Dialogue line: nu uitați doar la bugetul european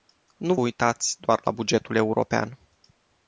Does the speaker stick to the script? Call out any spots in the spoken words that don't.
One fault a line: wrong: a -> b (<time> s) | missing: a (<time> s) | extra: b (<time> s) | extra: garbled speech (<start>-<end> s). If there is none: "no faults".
no faults